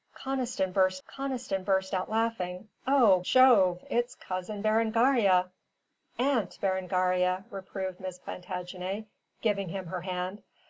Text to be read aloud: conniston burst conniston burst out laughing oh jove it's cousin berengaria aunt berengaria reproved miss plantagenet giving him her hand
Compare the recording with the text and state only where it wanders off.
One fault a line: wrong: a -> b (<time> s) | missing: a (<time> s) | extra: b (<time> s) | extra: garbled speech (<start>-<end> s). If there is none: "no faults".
no faults